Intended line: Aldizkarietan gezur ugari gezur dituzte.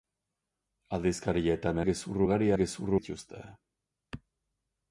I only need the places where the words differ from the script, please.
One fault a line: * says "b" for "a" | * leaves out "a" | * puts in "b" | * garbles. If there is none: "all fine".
all fine